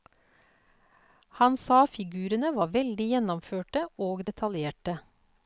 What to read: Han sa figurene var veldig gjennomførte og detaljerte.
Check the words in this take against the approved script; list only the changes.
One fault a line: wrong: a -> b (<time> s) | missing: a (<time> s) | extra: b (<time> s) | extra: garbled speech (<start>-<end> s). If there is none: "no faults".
no faults